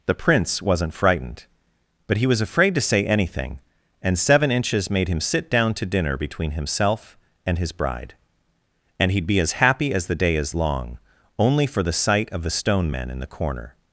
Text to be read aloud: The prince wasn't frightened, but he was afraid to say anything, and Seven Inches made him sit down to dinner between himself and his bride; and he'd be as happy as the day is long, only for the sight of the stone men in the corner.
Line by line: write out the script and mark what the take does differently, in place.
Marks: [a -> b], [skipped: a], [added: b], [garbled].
The prince wasn't frightened, but he was afraid to say anything, and Seven Inches made him sit down to dinner between himself and his bride; and he'd be as happy as the day is long, only for the sight of the stone men in the corner.